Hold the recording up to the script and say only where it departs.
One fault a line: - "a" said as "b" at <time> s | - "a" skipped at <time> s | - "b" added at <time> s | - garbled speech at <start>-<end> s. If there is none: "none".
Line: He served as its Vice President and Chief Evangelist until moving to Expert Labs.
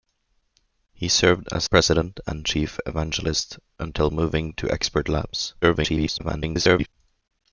- "its Vice" skipped at 1.7 s
- garbled speech at 5.6-6.9 s